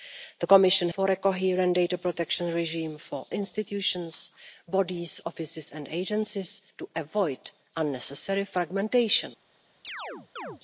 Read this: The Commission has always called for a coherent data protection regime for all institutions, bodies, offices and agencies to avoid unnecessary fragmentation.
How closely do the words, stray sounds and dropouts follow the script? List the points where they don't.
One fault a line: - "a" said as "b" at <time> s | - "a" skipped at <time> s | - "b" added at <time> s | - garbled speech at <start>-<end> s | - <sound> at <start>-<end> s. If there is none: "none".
- "has always called" skipped at 0.9 s
- "all" skipped at 3.2 s
- chirp at 9.8-10.6 s